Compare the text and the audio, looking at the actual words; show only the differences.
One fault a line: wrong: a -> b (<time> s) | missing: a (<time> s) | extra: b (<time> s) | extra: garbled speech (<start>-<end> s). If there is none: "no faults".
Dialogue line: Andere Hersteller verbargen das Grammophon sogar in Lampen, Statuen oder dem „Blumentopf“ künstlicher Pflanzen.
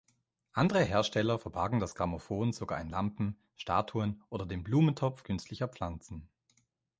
no faults